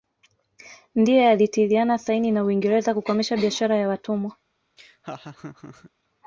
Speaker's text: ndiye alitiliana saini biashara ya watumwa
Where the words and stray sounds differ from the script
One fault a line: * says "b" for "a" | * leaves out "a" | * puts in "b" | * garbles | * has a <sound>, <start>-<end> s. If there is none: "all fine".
* puts in "na uingereza kukomesha"
* has a laugh, 4.8-5.9 s